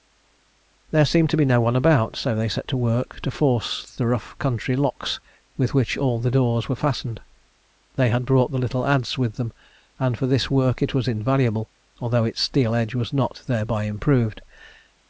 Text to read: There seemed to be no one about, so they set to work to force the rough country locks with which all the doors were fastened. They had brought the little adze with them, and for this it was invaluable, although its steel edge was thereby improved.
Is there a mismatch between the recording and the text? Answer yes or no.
yes